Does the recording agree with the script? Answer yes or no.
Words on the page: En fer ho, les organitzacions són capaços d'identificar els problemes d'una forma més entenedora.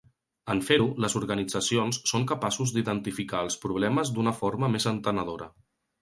yes